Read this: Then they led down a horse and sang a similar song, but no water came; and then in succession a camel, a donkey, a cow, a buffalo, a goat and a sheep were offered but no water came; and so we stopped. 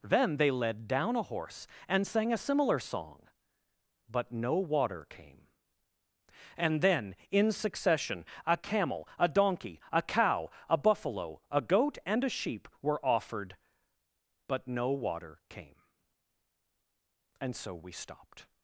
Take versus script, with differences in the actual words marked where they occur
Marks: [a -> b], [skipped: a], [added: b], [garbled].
Then they led down a horse and sang a similar song, but no water came; and then in succession a camel, a donkey, a cow, a buffalo, a goat and a sheep were offered but no water came; and so we stopped.